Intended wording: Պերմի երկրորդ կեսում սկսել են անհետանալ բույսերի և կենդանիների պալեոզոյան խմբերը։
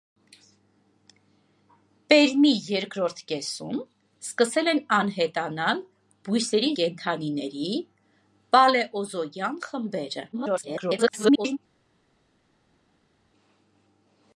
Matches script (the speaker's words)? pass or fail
fail